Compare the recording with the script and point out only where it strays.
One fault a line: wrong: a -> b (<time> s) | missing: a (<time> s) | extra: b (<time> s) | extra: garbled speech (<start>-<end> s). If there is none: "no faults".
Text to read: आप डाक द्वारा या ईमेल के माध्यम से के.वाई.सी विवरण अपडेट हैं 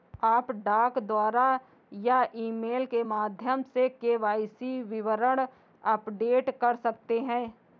extra: कर सकते (6.6 s)